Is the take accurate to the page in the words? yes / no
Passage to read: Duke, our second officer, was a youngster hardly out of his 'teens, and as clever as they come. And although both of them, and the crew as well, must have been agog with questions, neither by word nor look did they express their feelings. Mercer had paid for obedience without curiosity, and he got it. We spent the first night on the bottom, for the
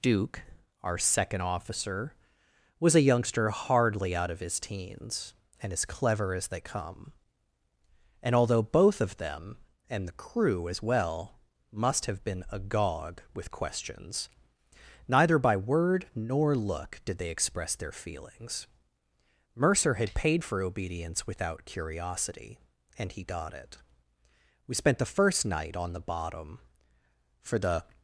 yes